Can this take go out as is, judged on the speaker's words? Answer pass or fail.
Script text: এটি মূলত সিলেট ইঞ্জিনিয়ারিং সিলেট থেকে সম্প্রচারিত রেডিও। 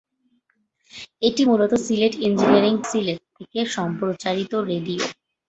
pass